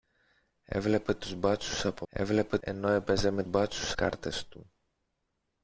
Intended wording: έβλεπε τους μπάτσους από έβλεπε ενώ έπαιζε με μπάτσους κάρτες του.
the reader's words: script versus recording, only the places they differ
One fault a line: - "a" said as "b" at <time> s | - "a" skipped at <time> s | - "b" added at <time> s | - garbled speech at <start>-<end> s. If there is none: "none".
none